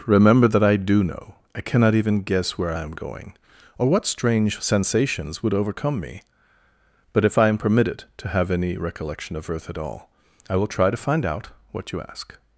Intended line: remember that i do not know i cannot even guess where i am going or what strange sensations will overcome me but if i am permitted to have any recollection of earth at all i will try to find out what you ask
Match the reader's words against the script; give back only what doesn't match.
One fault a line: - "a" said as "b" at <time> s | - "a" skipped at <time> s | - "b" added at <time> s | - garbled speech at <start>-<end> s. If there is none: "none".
- "not" skipped at 1.0 s
- "will" said as "would" at 5.4 s